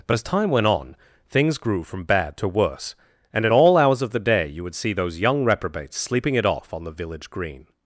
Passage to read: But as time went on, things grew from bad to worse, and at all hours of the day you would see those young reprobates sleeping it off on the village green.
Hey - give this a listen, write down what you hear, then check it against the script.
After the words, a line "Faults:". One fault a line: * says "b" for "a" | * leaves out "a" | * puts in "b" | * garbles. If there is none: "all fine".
But as time went on, things grew from bad to worse, and at all hours of the day you would see those young reprobates sleeping it off on the village green.
Faults:
all fine